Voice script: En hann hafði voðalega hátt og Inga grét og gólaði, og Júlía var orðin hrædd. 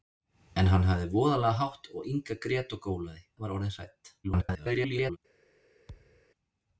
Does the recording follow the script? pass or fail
fail